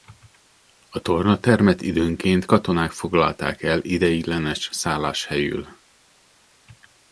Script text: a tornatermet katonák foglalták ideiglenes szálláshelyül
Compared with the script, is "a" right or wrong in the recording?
right